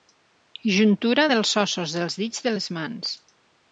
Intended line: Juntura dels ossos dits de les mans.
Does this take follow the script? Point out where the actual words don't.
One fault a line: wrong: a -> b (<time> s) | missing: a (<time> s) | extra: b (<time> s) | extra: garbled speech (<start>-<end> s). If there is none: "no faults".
extra: dels (2.0 s)